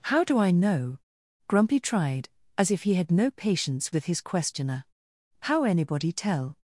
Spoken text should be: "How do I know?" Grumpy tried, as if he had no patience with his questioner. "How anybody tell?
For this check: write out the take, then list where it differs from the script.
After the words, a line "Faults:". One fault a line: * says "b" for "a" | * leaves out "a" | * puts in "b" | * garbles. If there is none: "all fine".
"How do I know?" Grumpy tried, as if he had no patience with his questioner. "How anybody tell?
Faults:
all fine